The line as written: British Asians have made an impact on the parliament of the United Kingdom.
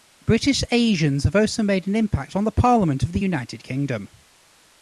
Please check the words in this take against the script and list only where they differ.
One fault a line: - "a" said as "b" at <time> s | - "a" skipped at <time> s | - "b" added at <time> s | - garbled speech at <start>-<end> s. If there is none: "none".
- "also" added at 1.4 s